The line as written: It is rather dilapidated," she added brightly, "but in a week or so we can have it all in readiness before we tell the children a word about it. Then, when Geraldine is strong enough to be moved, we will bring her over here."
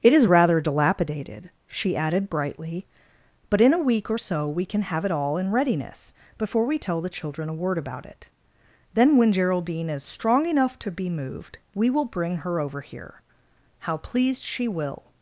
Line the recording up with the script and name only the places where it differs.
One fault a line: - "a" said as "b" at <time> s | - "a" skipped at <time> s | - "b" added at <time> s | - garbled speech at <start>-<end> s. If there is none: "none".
- "How pleased she will" added at 13.8 s